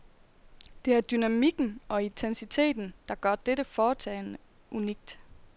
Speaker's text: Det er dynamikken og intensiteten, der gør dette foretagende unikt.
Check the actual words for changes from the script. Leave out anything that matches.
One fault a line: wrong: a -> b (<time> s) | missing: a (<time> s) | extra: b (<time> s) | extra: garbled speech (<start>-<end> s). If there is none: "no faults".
no faults